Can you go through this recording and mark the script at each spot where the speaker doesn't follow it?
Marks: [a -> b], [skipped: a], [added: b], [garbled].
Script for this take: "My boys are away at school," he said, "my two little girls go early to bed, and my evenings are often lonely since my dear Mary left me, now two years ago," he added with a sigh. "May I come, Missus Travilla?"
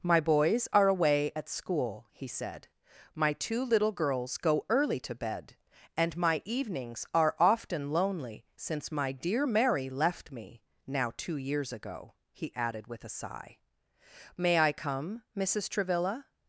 "My boys are away at school," he said, "my two little girls go early to bed, and my evenings are often lonely since my dear Mary left me, now two years ago," he added with a sigh. "May I come, Missus Travilla?"